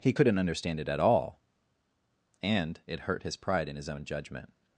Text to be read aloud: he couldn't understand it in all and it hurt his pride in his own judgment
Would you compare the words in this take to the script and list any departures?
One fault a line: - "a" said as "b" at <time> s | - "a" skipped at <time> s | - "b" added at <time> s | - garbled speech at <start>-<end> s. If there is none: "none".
- "in" said as "at" at 0.9 s